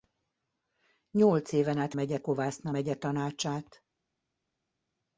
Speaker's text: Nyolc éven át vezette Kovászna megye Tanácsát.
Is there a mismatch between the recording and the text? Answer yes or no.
yes